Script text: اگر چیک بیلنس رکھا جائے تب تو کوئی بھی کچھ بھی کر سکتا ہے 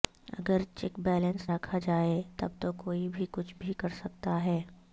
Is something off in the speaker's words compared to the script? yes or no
no